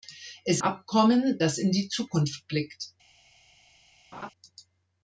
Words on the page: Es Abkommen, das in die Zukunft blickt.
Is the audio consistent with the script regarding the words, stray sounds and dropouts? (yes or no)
no